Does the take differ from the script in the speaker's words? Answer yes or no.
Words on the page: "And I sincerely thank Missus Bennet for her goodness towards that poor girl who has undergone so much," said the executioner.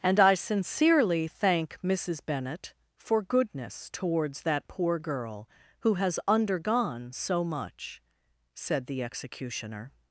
yes